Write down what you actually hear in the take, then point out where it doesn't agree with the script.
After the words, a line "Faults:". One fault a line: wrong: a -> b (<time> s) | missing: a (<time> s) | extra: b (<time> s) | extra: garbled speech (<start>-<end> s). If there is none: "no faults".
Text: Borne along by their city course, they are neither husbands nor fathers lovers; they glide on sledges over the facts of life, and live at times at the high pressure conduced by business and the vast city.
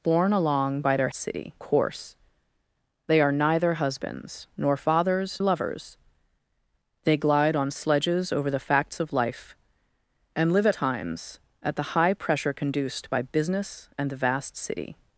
Borne along by their city course, they are neither husbands nor fathers lovers; they glide on sledges over the facts of life, and live at times at the high pressure conduced by business and the vast city.
Faults:
no faults